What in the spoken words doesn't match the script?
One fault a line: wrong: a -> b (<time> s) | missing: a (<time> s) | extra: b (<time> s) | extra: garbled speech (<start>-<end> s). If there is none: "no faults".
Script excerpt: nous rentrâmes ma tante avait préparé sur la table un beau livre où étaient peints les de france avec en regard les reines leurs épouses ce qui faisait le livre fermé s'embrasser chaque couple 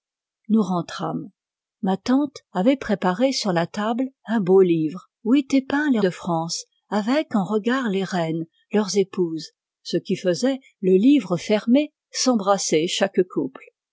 no faults